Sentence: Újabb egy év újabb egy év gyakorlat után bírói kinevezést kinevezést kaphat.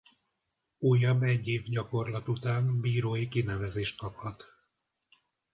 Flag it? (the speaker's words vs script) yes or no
yes